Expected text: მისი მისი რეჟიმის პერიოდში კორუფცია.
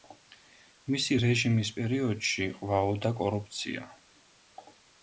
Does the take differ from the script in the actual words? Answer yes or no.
yes